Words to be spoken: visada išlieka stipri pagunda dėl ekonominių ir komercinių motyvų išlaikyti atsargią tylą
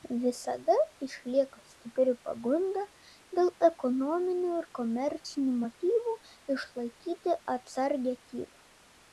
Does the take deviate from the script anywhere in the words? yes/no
no